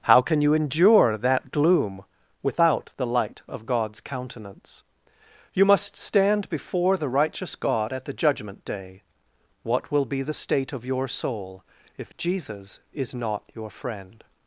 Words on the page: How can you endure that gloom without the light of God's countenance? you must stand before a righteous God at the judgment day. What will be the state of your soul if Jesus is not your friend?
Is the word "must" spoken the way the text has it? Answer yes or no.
yes